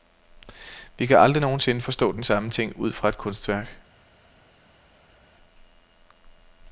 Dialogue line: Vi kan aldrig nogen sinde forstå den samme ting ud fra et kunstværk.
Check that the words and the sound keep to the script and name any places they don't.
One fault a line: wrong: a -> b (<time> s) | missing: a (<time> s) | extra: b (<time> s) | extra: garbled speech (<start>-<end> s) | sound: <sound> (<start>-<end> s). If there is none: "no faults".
no faults